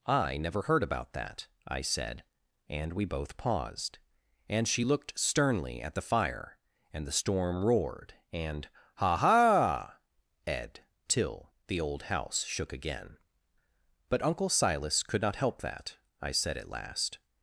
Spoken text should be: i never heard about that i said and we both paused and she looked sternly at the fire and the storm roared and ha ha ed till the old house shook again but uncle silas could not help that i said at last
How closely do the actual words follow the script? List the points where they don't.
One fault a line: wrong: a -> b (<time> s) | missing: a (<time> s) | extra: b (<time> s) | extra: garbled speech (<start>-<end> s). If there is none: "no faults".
no faults